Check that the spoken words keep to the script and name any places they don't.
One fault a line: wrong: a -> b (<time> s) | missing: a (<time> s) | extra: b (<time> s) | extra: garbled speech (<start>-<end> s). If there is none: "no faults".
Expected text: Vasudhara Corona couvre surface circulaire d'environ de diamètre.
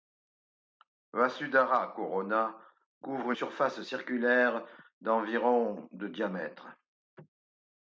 no faults